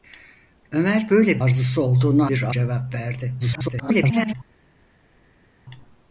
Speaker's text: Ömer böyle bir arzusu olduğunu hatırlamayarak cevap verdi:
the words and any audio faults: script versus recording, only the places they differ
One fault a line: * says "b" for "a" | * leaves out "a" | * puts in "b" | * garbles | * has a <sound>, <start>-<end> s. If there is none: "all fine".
* leaves out "bir"
* says "bir" for "hatırlamayarak"
* garbles